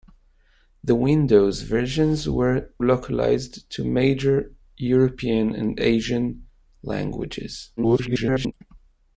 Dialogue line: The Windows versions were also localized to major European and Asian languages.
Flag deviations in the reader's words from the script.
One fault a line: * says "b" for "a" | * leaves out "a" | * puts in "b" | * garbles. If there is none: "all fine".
* leaves out "also"
* garbles